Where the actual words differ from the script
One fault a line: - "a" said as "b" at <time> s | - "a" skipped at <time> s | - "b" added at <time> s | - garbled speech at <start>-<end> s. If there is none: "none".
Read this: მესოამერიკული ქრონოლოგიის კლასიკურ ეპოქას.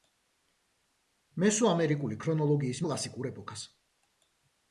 none